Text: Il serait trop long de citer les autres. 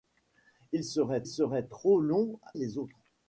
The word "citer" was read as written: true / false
false